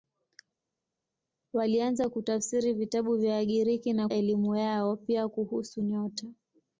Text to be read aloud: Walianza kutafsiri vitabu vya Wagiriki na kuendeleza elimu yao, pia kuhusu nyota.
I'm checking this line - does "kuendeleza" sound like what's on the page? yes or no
no